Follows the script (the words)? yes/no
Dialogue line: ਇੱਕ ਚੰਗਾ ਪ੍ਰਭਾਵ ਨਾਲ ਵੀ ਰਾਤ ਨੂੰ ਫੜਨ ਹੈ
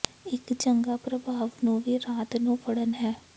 no